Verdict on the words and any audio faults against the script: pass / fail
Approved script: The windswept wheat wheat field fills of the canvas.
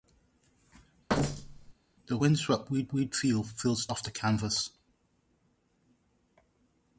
fail